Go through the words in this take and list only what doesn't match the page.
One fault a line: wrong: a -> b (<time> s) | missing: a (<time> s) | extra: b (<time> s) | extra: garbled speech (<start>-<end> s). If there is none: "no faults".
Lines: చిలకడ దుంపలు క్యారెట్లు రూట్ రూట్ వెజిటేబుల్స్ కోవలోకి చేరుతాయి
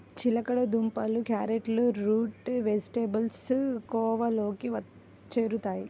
missing: రూట్ (2.5 s)